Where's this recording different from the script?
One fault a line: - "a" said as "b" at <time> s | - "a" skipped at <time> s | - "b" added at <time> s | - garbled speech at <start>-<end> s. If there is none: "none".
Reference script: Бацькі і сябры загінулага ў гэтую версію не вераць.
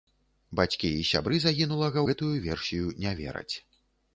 - "ў" skipped at 2.0 s